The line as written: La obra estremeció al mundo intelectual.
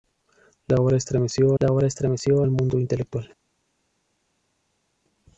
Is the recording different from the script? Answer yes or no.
yes